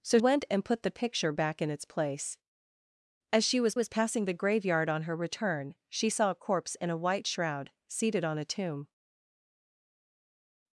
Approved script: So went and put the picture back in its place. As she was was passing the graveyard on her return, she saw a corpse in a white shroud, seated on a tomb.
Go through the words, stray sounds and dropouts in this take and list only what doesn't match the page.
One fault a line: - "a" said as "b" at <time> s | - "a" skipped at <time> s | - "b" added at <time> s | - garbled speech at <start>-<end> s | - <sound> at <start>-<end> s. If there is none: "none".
none